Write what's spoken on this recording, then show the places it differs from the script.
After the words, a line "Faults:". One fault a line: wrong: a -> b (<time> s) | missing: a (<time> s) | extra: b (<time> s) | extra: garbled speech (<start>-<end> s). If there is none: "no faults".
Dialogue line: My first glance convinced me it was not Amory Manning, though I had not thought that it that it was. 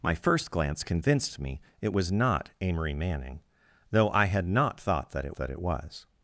My first glance convinced me it was not Amory Manning, though I had not thought that it that it was.
Faults:
no faults